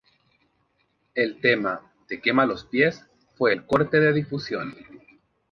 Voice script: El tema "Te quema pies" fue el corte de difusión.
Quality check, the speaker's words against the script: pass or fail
fail